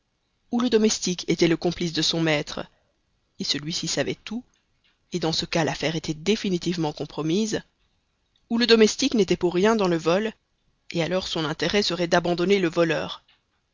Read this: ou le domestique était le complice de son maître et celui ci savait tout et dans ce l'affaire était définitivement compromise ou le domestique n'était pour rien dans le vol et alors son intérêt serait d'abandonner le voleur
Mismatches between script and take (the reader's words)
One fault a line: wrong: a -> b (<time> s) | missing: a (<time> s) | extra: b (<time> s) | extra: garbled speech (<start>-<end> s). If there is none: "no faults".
extra: cas (5.4 s)